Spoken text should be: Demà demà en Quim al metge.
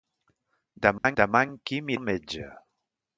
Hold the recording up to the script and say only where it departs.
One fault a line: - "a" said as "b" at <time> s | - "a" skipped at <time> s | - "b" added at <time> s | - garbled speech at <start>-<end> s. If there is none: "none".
none